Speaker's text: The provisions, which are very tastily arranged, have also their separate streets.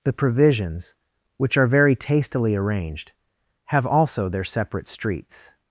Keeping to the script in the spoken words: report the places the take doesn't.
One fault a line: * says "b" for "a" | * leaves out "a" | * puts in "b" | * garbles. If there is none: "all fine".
all fine